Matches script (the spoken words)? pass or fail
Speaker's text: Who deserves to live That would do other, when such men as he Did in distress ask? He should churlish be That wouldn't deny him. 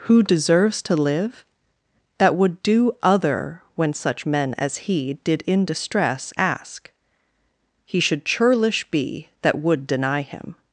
fail